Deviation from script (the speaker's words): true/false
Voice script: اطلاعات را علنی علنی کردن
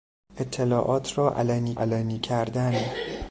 false